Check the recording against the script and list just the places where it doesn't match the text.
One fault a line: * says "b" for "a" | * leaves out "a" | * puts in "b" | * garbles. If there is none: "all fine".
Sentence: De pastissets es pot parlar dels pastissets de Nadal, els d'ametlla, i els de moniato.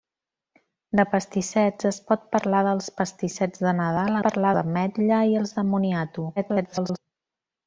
* says "parlar" for "els"
* garbles